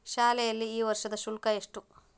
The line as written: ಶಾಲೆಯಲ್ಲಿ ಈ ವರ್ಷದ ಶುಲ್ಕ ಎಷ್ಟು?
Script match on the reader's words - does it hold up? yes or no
yes